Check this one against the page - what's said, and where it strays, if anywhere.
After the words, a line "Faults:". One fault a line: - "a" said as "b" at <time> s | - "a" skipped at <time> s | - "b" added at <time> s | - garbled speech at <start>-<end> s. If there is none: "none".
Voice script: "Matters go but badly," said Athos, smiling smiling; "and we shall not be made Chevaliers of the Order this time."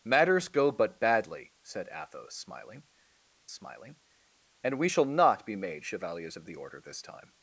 "Matters go but badly," said Athos, smiling smiling; "and we shall not be made Chevaliers of the Order this time."
Faults:
none